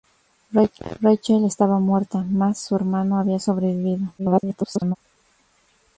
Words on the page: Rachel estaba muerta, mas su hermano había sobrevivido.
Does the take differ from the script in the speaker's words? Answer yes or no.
yes